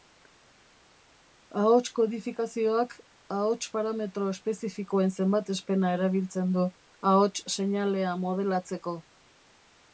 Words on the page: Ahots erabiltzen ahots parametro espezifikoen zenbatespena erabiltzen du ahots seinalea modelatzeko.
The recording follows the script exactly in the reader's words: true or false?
false